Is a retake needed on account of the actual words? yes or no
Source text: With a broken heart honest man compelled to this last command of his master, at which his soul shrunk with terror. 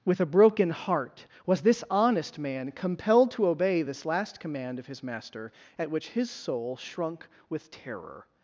yes